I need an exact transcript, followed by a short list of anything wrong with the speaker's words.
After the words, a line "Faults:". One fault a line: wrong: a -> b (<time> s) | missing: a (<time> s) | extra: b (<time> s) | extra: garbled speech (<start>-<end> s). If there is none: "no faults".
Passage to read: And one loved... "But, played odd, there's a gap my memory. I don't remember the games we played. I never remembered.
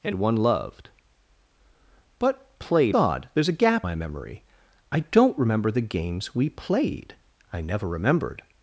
And one loved... "But, played odd, there's a gap my memory. I don't remember the games we played. I never remembered.
Faults:
no faults